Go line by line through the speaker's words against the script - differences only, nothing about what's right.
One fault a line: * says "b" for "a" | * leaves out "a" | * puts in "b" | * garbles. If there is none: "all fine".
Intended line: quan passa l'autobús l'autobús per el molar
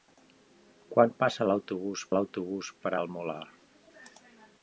all fine